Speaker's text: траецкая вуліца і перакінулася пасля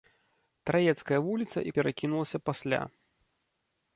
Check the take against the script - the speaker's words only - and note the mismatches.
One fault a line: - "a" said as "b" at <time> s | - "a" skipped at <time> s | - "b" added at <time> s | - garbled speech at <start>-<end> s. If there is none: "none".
none